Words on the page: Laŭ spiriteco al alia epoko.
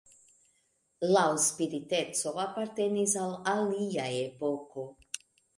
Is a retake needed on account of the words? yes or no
yes